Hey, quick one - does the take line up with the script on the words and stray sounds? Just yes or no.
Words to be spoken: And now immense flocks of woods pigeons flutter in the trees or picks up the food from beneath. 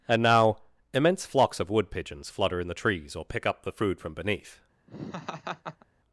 no